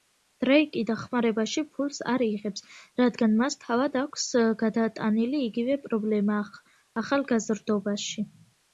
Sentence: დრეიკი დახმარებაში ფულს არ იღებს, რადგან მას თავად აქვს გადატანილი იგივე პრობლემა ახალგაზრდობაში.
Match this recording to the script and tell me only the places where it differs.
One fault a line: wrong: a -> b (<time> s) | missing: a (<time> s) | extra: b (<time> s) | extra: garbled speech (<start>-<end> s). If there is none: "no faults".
no faults